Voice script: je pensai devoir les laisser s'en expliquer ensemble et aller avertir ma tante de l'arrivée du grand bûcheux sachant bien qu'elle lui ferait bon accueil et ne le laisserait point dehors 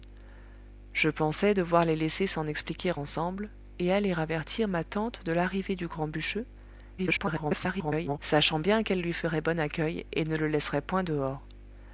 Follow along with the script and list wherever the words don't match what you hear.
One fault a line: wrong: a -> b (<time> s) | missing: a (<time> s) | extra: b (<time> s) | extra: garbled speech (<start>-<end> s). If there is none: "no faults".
extra: garbled speech (7.0-8.2 s)